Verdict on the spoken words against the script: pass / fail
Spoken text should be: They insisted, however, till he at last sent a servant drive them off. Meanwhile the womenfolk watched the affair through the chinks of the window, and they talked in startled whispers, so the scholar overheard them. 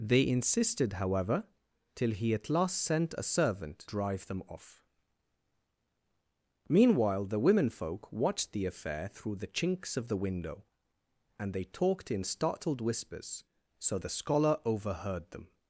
pass